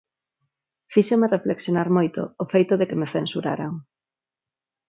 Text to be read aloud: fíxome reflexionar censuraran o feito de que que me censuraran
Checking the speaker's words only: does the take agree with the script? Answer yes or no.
no